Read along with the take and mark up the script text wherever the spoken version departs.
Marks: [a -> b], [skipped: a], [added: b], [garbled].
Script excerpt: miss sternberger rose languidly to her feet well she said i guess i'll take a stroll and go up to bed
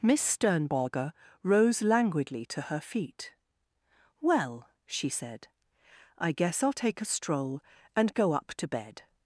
miss sternberger rose languidly to her feet well she said i guess i'll take a stroll and go up to bed